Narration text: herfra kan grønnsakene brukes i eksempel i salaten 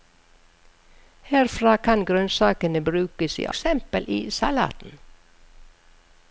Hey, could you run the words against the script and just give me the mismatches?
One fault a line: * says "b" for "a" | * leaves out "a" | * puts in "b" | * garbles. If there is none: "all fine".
all fine